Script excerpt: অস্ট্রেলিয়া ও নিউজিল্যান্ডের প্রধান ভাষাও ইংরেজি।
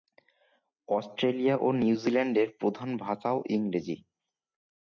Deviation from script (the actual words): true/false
false